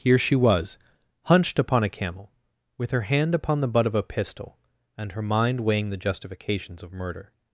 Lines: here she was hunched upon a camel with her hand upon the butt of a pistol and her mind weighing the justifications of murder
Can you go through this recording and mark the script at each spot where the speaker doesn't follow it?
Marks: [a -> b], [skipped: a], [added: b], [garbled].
here she was hunched upon a camel with her hand upon the butt of a pistol and her mind weighing the justifications of murder